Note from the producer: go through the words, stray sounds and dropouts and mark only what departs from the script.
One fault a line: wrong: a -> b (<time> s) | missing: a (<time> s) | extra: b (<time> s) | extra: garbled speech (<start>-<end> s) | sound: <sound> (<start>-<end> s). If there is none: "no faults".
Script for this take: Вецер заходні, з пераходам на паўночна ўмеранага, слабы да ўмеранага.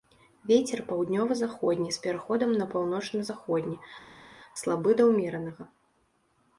extra: паўднёва (0.9 s)
wrong: ўмеранага -> заходні (3.3 s)